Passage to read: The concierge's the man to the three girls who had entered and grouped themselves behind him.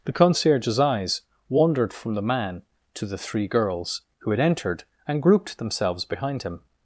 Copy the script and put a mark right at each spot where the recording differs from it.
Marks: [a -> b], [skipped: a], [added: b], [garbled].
The concierge's [added: eyes wandered from] the man to the three girls who had entered and grouped themselves behind him.